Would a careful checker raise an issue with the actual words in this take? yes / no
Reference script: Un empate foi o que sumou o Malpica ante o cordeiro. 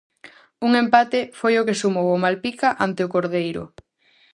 no